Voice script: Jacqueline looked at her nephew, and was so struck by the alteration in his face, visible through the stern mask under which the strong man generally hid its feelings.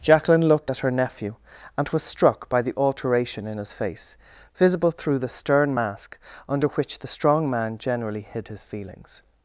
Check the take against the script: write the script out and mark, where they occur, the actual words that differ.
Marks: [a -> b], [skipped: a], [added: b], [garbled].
Jacqueline looked at her nephew, and was [skipped: so] struck by the alteration in his face, visible through the stern mask under which the strong man generally hid [its -> his] feelings.